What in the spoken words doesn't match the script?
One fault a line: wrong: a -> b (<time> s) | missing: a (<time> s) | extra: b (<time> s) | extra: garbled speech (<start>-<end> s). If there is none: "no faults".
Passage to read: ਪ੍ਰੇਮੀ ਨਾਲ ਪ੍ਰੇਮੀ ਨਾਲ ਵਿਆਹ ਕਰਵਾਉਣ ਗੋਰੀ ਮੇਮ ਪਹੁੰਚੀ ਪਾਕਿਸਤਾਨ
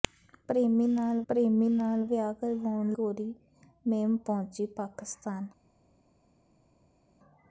no faults